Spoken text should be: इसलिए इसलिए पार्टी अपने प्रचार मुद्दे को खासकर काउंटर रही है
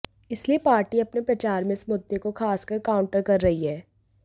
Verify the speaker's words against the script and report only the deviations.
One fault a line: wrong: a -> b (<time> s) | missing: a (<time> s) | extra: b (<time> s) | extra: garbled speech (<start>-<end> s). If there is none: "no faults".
missing: इसलिए (0.6 s)
extra: में इस (1.6 s)
extra: कर (3.2 s)